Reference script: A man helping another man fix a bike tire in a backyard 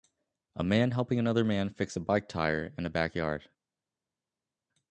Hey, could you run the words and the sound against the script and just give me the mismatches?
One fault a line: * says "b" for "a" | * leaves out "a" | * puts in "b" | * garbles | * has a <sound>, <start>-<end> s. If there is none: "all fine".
all fine